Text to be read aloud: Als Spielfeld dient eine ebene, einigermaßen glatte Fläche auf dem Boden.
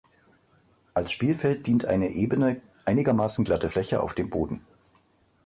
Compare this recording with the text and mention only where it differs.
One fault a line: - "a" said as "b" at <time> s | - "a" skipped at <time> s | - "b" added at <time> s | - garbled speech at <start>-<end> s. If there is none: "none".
none